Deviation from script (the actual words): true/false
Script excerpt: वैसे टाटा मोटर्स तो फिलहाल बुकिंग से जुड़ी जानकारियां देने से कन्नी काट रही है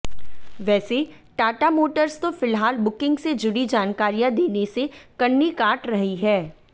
false